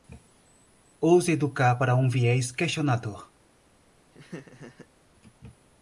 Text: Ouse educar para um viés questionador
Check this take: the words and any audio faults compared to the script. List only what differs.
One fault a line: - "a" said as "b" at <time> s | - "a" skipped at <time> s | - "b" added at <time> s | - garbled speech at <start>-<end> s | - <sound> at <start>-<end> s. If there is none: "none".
- laugh at 4.1-4.9 s